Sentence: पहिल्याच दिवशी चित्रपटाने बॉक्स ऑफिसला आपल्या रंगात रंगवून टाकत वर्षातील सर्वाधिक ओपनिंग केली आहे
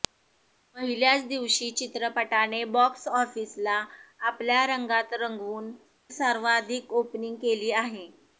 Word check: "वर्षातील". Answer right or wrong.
wrong